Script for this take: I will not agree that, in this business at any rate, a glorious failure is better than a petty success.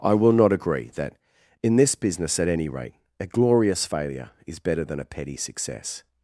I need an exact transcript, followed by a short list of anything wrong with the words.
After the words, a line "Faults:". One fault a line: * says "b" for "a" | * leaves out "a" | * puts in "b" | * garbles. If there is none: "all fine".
I will not agree that, in this business at any rate, a glorious failure is better than a petty success.
Faults:
all fine